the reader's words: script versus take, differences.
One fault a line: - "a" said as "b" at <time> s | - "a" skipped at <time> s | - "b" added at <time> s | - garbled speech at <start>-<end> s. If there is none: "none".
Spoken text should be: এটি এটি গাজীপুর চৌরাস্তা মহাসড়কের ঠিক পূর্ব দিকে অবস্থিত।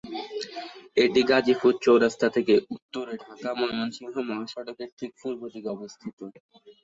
- "এটি" skipped at 1.2 s
- "থেকে উত্তরে ঢাকা-ময়মনসিংহ" added at 2.4 s